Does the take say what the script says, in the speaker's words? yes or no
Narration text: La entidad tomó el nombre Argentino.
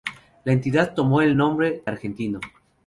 yes